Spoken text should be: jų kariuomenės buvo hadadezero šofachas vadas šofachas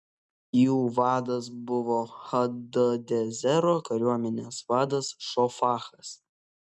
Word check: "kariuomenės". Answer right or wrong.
wrong